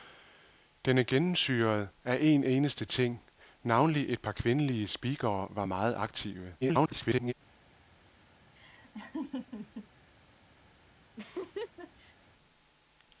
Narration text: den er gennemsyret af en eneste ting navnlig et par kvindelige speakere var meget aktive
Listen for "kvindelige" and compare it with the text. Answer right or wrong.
right